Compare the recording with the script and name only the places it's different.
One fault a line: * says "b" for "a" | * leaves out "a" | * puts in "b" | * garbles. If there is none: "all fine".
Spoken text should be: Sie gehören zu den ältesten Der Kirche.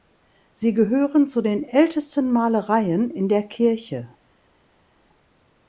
* puts in "Malereien in"